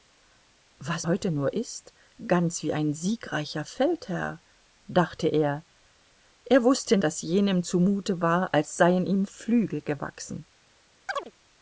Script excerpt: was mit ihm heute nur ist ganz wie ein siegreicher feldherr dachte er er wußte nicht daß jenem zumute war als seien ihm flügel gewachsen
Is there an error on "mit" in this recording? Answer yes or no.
yes